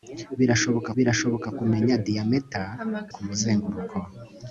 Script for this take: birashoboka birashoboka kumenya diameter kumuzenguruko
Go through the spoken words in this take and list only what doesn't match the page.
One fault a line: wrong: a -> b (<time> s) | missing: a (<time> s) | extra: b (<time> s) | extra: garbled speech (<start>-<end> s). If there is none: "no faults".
no faults